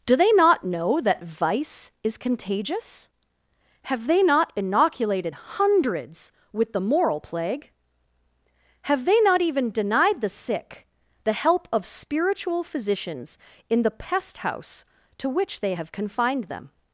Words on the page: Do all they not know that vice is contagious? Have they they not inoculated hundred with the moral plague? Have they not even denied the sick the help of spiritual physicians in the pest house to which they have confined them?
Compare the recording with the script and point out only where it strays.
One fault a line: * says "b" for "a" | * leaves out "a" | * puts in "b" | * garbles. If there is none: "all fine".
* leaves out "all"
* leaves out "they"
* says "hundreds" for "hundred"